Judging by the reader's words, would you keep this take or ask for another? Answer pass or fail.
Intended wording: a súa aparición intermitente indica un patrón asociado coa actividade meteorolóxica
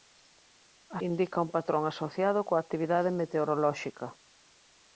fail